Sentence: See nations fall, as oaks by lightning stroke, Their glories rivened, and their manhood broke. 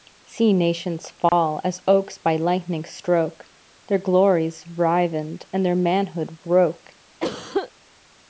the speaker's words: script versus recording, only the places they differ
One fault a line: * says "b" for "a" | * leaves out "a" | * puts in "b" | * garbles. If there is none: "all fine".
all fine